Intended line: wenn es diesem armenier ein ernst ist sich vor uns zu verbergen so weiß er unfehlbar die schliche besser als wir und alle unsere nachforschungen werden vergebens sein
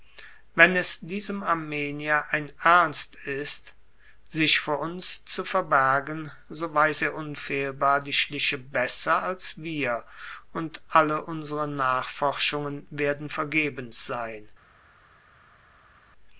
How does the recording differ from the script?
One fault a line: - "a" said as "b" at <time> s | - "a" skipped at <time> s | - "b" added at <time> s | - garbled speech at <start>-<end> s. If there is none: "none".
none